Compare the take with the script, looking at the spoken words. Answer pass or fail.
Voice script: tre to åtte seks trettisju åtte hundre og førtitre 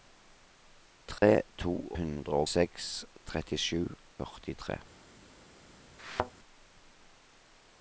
fail